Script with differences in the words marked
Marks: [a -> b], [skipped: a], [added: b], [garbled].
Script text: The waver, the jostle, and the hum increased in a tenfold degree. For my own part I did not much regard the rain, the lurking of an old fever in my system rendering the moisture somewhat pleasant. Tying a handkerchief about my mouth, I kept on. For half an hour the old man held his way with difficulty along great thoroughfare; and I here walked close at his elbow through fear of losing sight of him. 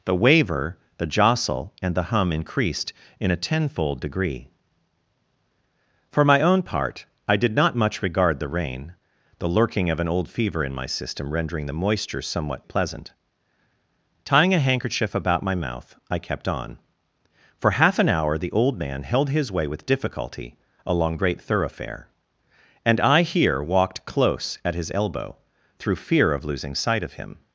The waver, the jostle, and the hum increased in a tenfold degree. For my own part I did not much regard the rain, the lurking of an old fever in my system rendering the moisture somewhat pleasant. Tying a handkerchief about my mouth, I kept on. For half an hour the old man held his way with difficulty along great thoroughfare; and I here walked close at his elbow through fear of losing sight of him.